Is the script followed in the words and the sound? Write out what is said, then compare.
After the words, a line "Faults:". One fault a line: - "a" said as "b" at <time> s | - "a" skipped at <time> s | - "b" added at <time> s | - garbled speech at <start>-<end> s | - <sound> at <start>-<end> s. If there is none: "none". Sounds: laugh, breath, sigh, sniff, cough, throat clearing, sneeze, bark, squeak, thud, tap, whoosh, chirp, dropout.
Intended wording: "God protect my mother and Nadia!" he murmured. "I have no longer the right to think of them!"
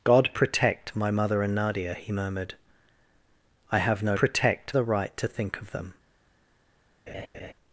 "God protect my mother and Nadia!" he murmured. "I have no protect the right to think of them!"
Faults:
- "longer" said as "protect" at 4.1 s
- laugh at 7.1-7.5 s